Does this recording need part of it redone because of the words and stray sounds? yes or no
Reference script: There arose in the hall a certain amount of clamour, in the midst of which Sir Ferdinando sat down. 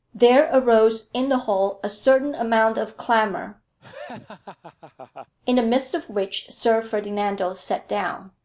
yes